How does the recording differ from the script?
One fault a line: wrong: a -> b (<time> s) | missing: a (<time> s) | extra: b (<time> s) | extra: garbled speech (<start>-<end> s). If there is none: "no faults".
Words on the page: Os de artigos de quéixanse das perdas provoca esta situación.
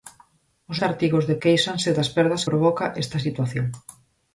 no faults